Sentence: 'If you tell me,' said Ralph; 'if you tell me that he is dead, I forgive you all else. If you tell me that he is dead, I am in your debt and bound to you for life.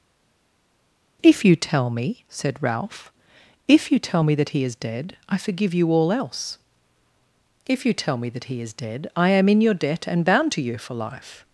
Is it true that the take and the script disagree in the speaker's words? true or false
false